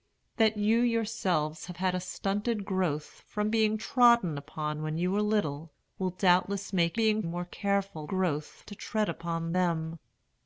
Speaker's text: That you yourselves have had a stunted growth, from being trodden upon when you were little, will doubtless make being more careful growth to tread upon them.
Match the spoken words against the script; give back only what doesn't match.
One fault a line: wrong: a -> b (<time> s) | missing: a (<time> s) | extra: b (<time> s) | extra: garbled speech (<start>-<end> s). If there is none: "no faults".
no faults